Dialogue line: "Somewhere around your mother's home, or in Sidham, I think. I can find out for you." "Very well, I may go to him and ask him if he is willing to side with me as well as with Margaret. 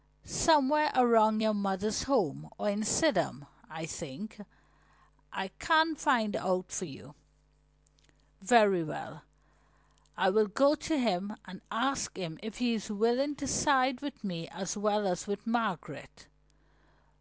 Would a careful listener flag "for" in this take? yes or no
no